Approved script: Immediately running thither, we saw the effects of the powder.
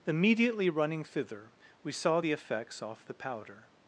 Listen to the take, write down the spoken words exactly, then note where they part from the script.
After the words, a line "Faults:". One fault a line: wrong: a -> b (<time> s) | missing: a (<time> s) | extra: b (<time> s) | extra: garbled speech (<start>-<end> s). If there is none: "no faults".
Immediately running thither, we saw the effects off the powder.
Faults:
wrong: of -> off (2.8 s)